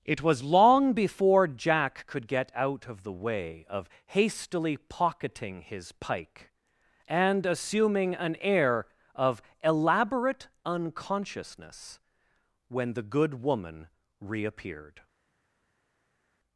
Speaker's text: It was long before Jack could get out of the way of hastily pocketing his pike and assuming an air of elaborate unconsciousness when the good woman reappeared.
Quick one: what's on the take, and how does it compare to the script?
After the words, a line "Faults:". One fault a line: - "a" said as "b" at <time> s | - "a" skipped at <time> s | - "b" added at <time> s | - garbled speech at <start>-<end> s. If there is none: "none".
It was long before Jack could get out of the way of hastily pocketing his pike and assuming an air of elaborate unconsciousness when the good woman reappeared.
Faults:
none